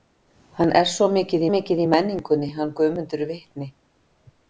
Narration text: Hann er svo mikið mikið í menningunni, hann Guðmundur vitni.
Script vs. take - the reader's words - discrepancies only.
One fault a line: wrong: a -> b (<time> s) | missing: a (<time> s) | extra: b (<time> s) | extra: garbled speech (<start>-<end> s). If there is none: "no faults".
no faults